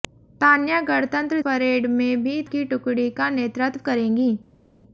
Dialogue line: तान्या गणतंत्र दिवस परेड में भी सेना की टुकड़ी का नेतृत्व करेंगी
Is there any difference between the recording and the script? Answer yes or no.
yes